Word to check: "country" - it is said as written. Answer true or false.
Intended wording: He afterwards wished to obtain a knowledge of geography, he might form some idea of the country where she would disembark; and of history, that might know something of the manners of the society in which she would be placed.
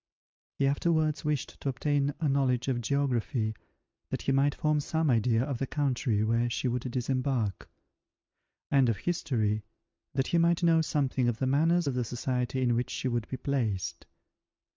true